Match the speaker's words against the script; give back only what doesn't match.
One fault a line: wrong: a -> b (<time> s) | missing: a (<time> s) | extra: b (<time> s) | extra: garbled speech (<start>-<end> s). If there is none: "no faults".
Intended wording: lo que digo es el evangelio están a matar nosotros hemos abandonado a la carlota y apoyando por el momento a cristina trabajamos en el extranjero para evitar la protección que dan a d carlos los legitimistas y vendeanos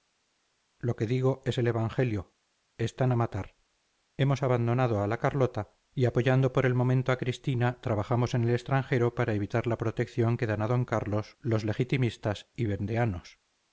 missing: nosotros (3.5 s)